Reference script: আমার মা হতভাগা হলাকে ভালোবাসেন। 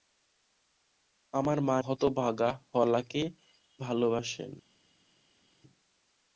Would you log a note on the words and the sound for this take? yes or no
no